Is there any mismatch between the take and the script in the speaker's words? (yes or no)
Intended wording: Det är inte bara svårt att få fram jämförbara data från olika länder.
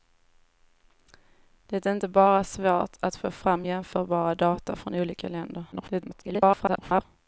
yes